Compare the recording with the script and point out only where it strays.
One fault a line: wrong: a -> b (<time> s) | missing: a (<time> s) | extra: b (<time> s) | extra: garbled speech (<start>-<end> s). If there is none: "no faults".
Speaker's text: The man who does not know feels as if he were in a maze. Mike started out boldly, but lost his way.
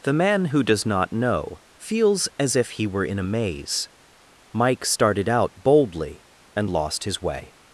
wrong: but -> and (6.5 s)